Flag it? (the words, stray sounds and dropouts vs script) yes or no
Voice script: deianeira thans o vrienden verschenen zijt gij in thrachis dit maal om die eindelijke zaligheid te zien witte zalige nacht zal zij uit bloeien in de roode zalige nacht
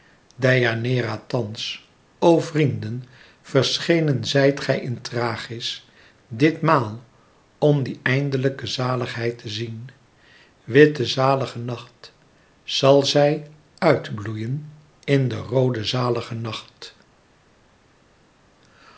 no